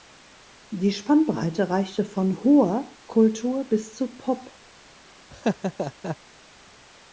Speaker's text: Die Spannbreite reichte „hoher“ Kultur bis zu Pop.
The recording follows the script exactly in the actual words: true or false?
false